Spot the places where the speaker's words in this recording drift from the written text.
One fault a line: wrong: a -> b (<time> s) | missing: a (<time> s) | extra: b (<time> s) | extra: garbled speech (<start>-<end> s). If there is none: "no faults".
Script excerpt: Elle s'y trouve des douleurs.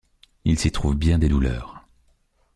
wrong: Elle -> Il (0.5 s)
extra: bien (0.9 s)